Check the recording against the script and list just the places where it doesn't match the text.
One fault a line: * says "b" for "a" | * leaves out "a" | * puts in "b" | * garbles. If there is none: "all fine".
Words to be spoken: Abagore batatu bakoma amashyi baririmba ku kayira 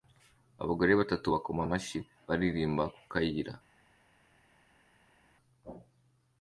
all fine